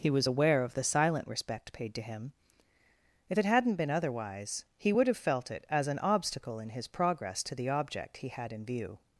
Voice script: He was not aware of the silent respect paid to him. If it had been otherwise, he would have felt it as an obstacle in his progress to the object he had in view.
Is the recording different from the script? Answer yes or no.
yes